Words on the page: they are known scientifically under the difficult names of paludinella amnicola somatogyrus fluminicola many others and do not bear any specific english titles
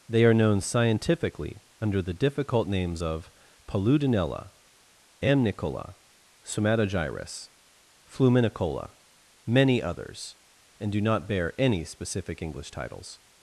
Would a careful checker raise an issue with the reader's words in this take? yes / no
no